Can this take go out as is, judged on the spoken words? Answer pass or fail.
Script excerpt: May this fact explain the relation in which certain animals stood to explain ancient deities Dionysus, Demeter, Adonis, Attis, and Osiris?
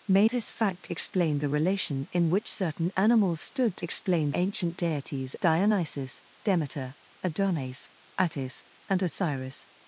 pass